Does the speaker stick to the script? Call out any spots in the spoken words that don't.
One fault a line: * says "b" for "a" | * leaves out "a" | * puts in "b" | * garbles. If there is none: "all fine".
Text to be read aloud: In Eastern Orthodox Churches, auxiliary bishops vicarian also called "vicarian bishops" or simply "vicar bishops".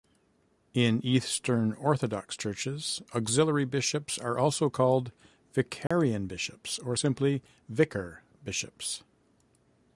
* says "are" for "vicarian"